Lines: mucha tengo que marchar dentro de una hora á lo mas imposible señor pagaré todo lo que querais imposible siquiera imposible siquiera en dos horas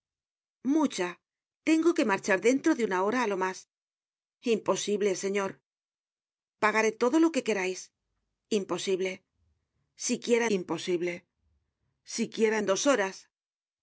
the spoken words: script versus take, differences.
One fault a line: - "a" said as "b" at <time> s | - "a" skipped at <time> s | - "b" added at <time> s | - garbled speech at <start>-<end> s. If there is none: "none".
none